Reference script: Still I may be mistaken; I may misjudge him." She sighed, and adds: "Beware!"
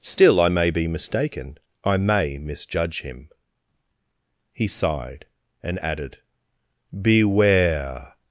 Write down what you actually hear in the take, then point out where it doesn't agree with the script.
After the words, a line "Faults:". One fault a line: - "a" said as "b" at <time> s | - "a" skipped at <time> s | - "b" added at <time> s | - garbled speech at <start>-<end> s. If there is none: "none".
Still I may be mistaken; I may misjudge him." He sighed, and added: "Beware!"
Faults:
- "She" said as "He" at 4.5 s
- "adds" said as "added" at 5.8 s